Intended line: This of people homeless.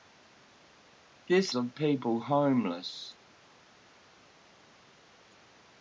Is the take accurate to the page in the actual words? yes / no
yes